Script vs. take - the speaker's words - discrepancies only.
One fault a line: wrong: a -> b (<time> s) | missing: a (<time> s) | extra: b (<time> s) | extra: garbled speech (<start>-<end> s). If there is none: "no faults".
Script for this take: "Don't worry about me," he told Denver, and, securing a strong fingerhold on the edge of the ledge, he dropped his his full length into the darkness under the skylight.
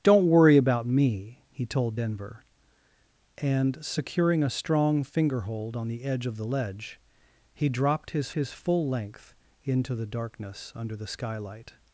no faults